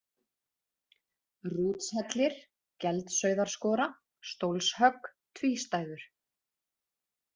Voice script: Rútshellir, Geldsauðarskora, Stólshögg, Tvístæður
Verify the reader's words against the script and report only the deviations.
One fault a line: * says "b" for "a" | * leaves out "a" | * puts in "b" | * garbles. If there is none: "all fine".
all fine